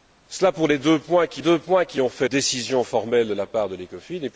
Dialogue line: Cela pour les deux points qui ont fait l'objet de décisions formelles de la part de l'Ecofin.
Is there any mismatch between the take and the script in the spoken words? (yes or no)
yes